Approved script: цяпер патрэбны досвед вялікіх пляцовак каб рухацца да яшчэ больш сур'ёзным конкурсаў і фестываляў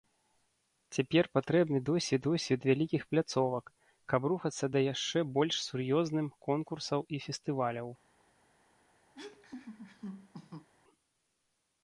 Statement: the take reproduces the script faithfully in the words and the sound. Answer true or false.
false